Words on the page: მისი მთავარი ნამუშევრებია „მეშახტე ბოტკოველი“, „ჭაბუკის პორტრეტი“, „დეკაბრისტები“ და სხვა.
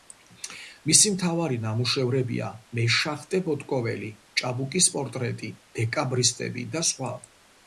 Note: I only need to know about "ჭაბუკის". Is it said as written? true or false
true